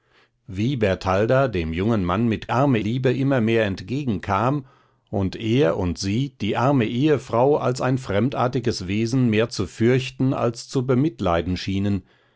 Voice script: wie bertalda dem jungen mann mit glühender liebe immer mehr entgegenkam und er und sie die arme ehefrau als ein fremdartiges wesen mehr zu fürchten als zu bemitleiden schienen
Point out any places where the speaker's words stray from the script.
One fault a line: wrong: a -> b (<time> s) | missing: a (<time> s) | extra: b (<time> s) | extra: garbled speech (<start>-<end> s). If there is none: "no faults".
wrong: glühender -> arme (2.5 s)